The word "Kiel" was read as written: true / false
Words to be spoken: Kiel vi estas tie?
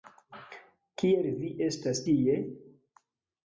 true